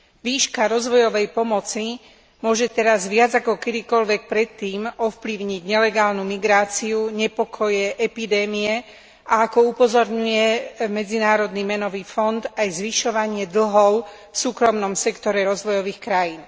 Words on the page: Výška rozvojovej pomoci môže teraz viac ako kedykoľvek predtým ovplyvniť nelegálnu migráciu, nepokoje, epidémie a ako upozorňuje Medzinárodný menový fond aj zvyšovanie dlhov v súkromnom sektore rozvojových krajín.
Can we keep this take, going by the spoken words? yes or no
yes